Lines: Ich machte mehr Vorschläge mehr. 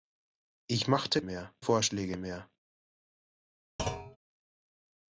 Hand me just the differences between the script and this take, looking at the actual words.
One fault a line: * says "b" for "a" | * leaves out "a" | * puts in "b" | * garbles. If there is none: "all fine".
all fine